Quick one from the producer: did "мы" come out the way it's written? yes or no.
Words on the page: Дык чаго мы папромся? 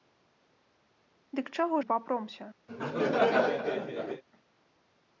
yes